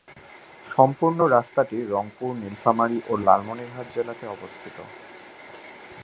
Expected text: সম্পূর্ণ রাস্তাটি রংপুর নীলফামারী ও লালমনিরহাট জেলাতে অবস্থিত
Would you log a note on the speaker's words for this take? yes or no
no